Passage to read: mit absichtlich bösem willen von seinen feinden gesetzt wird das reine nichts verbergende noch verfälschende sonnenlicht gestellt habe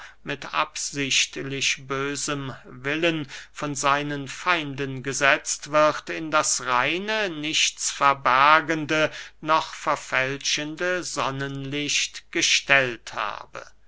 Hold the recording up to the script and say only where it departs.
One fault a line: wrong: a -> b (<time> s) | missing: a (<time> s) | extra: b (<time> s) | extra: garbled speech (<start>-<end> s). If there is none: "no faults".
extra: in (6.1 s)